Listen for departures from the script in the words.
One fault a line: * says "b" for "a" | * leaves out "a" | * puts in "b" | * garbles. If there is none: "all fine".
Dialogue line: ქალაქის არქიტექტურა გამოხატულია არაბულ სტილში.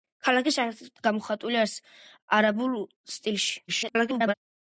* leaves out "არქიტექტურა"
* garbles